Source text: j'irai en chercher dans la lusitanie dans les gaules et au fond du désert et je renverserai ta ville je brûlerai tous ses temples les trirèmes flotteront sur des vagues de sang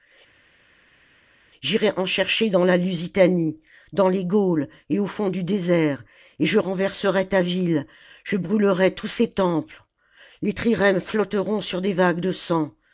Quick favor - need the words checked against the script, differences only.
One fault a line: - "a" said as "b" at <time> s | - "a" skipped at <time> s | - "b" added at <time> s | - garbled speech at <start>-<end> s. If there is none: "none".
none